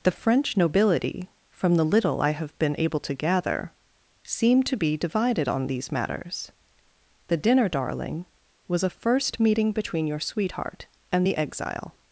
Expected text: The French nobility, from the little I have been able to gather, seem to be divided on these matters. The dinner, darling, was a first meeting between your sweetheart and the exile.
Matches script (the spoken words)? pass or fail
pass